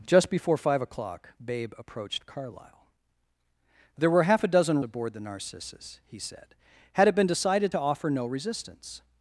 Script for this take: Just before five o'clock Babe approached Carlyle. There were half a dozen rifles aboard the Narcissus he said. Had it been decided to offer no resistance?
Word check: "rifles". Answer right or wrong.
wrong